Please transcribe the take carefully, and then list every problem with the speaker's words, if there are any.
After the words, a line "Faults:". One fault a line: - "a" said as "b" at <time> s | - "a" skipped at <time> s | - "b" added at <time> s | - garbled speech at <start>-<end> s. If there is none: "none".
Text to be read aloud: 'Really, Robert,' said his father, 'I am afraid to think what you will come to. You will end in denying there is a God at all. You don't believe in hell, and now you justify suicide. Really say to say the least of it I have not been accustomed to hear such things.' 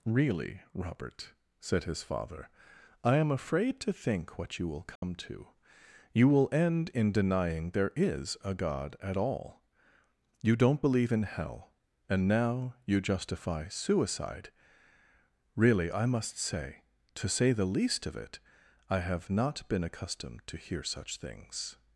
'Really, Robert,' said his father, 'I am afraid to think what you will come to. You will end in denying there is a God at all. You don't believe in hell, and now you justify suicide. Really I must say to say the least of it I have not been accustomed to hear such things.'
Faults:
- "I must" added at 15.9 s